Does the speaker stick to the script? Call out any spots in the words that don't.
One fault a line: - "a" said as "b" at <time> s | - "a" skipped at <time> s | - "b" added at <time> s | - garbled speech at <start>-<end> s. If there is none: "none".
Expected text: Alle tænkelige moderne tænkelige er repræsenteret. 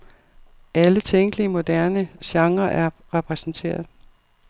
- "tænkelige" said as "genrer" at 2.2 s